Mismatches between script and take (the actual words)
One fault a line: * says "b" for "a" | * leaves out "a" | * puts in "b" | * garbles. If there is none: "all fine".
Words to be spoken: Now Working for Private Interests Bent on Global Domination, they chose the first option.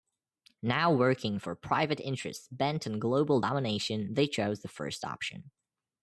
all fine